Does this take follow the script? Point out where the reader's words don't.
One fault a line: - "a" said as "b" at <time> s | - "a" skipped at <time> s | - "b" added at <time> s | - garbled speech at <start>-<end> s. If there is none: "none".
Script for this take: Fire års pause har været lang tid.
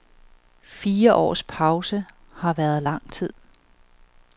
none